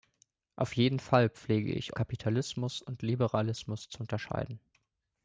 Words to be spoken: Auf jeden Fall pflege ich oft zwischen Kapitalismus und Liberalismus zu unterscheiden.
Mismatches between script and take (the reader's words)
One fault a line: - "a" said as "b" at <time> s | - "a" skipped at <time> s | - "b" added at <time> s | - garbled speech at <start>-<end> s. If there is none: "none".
- "oft zwischen" skipped at 2.0 s